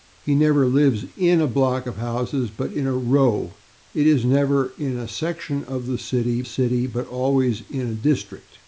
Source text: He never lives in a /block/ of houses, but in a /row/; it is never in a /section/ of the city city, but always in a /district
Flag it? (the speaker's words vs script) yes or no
no